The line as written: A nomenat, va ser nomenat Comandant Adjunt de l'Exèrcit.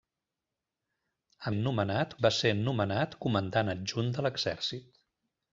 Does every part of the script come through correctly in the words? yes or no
yes